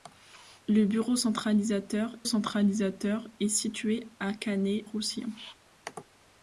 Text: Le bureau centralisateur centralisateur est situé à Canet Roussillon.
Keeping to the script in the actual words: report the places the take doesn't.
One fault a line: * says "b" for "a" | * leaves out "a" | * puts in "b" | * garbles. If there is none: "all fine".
all fine